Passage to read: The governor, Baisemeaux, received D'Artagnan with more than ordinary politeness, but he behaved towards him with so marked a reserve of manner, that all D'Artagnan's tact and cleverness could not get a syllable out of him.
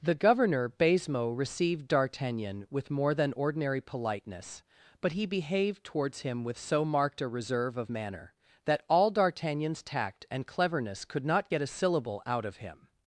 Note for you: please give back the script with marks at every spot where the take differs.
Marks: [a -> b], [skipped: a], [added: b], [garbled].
The governor, Baisemeaux, received D'Artagnan with more than ordinary politeness, but he behaved towards him with so marked a reserve of manner, that all D'Artagnan's tact and cleverness could not get a syllable out of him.